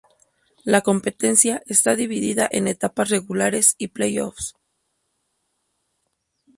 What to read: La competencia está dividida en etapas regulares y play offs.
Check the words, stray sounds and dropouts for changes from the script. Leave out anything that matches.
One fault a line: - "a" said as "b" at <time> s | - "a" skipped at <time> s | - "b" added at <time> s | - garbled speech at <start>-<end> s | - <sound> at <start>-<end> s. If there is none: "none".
none